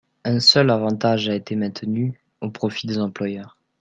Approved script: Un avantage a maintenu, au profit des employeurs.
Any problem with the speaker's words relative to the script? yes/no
yes